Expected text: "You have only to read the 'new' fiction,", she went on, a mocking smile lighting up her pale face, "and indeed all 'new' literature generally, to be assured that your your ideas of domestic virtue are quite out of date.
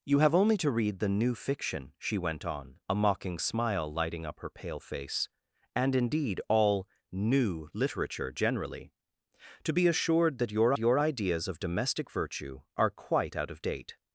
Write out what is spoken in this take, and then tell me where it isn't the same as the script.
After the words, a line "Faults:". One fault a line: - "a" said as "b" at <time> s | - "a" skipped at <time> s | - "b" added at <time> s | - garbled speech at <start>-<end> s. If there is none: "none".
"You have only to read the 'new' fiction,", she went on, a mocking smile lighting up her pale face, "and indeed all 'new' literature generally, to be assured that your your ideas of domestic virtue are quite out of date.
Faults:
none